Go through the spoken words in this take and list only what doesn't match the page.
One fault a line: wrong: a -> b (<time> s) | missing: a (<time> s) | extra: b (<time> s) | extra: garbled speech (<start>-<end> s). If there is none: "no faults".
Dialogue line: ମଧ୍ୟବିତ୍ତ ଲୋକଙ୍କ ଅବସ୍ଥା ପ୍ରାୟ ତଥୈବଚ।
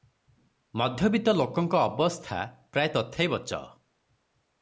no faults